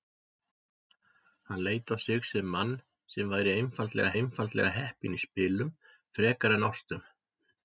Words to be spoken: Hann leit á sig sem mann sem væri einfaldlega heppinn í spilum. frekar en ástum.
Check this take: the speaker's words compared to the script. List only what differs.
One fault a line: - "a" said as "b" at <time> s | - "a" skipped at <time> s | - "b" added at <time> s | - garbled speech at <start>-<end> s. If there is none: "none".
- "einfaldlega" added at 4.2 s